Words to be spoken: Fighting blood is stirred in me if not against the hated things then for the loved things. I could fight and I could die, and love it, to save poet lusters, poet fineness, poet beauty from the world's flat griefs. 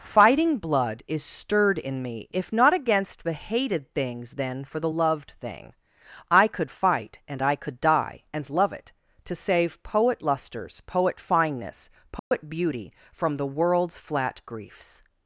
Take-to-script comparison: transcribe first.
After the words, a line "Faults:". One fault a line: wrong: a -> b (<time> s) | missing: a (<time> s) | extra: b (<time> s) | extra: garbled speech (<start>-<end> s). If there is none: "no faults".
Fighting blood is stirred in me if not against the hated things then for the loved thing. I could fight and I could die, and love it, to save poet lusters, poet fineness, poet beauty from the world's flat griefs.
Faults:
wrong: things -> thing (5.3 s)